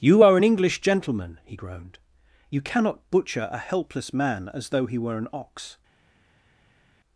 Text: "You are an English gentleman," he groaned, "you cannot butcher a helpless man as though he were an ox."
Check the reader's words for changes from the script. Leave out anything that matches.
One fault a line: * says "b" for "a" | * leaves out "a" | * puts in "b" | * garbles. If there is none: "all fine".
all fine